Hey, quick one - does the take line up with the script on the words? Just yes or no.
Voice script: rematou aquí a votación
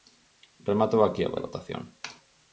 no